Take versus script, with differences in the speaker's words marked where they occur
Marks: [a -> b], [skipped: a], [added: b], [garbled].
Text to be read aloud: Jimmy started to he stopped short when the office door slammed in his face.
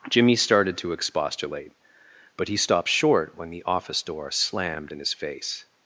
Jimmy started to [added: expostulate but] he stopped short when the office door slammed in his face.